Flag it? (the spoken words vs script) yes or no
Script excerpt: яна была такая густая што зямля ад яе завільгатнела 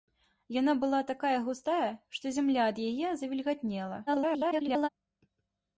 yes